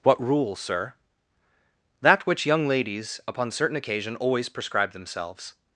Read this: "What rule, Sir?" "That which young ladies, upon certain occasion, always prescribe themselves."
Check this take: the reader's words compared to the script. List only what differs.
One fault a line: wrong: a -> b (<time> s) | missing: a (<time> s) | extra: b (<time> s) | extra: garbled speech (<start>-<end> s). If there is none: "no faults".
no faults